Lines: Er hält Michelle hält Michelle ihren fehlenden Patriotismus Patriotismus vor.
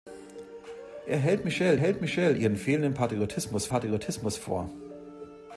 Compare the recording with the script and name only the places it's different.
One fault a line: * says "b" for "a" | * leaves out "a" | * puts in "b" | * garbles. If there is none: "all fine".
all fine